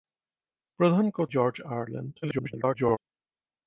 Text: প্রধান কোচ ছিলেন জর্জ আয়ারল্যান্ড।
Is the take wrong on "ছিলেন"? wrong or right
wrong